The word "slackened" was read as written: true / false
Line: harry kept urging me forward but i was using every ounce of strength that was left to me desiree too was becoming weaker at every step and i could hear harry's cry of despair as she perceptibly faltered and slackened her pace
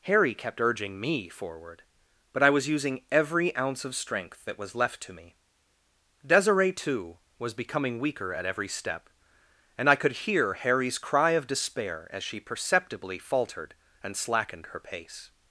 true